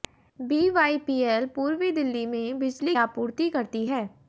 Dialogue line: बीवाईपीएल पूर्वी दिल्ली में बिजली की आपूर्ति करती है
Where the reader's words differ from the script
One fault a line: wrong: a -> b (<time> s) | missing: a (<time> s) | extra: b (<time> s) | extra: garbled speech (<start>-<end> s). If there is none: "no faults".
missing: की (3.0 s)